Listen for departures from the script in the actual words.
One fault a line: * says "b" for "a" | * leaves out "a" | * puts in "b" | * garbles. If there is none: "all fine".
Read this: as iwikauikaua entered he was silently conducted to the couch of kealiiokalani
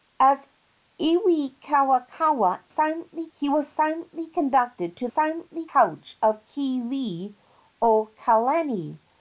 * says "silently" for "entered"
* says "silently" for "the"